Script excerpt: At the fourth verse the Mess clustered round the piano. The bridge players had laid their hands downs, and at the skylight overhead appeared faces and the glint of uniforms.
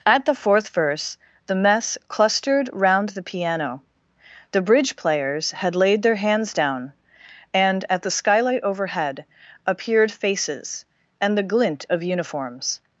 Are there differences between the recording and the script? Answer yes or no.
yes